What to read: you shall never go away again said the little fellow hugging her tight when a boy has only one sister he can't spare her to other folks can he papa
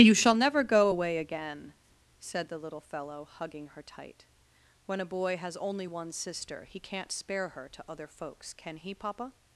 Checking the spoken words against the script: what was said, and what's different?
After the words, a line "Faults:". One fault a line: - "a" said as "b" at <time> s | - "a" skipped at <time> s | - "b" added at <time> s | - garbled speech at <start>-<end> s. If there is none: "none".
you shall never go away again said the little fellow hugging her tight when a boy has only one sister he can't spare her to other folks can he papa
Faults:
none